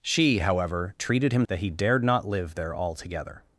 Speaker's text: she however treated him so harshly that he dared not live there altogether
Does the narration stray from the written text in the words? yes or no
yes